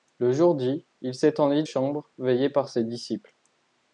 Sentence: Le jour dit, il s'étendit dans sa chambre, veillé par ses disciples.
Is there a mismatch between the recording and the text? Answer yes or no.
yes